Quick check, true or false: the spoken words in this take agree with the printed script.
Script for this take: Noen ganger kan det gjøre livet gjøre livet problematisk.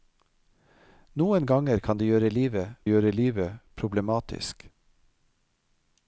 true